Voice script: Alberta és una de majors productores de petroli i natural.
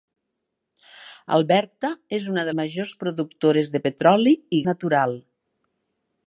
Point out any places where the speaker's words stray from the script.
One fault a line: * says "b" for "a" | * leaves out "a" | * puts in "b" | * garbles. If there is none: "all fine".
all fine